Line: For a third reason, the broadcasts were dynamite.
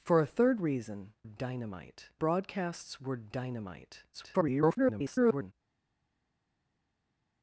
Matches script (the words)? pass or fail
fail